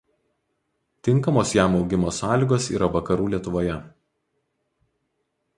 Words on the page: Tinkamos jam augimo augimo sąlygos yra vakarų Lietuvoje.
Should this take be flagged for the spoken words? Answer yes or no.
yes